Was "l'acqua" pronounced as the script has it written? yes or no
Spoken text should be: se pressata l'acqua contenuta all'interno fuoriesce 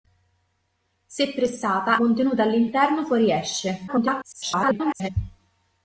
no